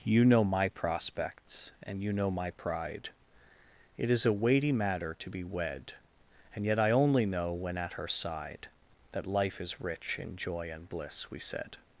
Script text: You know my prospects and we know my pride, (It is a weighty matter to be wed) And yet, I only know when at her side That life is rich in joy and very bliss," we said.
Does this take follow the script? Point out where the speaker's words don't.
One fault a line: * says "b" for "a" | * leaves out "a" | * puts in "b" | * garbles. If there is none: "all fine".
* says "you" for "we"
* leaves out "very"